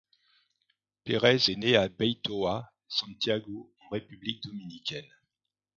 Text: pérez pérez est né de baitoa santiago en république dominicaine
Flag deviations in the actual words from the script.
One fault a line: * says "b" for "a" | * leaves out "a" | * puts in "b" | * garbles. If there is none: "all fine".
* leaves out "pérez"
* says "à" for "de"